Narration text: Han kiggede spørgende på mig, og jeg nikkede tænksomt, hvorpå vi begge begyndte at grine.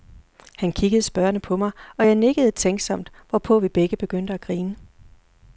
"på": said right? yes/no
yes